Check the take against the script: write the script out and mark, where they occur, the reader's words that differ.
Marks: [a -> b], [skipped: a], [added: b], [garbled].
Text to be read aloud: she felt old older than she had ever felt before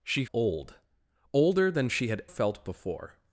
she [skipped: felt] old older than she had [skipped: ever] felt before